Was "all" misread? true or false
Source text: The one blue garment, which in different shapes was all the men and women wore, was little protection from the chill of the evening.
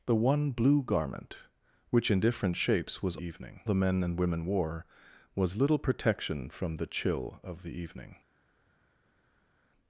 true